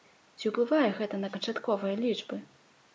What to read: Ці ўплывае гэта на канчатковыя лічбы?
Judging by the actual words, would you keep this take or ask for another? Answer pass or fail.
pass